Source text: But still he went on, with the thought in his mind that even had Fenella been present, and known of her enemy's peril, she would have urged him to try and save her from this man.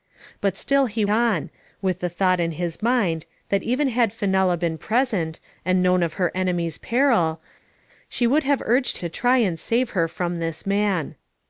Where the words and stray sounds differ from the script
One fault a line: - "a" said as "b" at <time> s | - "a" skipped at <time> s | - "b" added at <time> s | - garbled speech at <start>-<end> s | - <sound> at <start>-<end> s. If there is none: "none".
- "went" skipped at 1.0 s
- "him" skipped at 9.0 s